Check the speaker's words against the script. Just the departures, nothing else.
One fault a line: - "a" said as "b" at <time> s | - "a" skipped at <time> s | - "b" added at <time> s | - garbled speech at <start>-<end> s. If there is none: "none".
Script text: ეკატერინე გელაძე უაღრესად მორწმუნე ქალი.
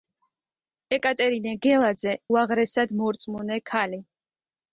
none